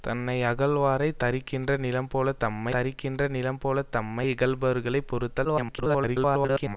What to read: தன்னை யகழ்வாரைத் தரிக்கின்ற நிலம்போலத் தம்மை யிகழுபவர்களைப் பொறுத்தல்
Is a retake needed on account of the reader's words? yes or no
yes